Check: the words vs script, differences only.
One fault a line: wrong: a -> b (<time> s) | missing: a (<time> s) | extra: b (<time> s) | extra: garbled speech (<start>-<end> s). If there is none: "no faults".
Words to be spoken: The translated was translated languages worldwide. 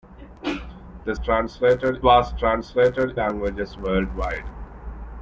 no faults